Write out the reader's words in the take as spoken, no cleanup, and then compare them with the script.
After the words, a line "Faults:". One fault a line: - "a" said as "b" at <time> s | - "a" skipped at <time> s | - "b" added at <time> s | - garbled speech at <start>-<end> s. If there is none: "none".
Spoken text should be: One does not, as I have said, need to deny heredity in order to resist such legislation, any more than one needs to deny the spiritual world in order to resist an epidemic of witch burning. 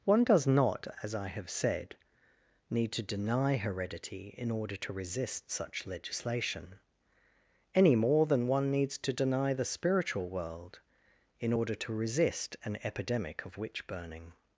One does not, as I have said, need to deny heredity in order to resist such legislation, any more than one needs to deny the spiritual world in order to resist an epidemic of witch burning.
Faults:
none